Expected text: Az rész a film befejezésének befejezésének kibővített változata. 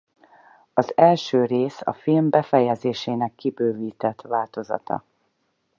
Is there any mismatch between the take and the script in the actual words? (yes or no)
yes